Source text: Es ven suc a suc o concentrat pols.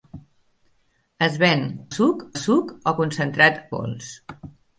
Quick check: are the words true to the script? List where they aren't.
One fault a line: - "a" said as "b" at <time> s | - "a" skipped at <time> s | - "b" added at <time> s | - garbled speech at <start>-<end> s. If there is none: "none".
none